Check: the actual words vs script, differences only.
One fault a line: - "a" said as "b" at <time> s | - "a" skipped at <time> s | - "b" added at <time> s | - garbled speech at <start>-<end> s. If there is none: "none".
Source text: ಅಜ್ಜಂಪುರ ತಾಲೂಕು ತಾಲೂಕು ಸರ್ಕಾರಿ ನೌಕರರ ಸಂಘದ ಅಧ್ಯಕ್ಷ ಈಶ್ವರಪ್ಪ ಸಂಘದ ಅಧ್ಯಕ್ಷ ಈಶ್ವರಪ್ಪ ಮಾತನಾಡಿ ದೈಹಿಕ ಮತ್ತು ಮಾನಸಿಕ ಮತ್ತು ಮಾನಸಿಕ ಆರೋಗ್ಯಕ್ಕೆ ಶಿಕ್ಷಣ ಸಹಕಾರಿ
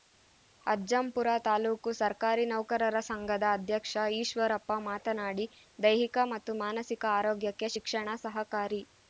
- "ತಾಲೂಕು" skipped at 1.9 s
- "ಸಂಘದ ಅಧ್ಯಕ್ಷ ಈಶ್ವರಪ್ಪ" skipped at 4.7 s
- "ಮತ್ತು ಮಾನಸಿಕ" skipped at 7.0 s